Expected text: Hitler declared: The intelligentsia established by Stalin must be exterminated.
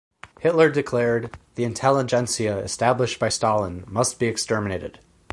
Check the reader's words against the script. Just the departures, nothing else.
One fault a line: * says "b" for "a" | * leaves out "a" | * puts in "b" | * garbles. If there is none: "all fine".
all fine